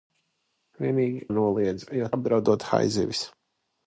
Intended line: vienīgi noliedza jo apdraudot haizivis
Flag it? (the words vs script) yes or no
no